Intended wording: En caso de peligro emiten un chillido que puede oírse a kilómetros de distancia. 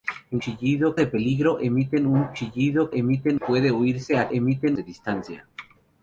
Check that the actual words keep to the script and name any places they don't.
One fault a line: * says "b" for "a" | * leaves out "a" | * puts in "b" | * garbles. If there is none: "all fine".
* says "chillido" for "caso"
* says "emiten" for "que"
* says "emiten" for "kilómetros"